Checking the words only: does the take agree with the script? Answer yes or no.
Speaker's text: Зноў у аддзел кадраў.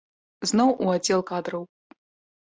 yes